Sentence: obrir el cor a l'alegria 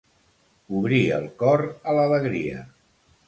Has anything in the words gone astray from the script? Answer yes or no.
no